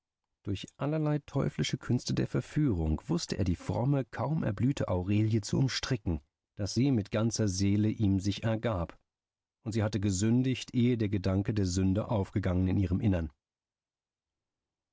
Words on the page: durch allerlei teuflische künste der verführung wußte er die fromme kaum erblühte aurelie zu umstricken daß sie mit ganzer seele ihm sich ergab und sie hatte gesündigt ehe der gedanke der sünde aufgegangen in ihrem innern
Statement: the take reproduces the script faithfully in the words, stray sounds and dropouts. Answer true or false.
true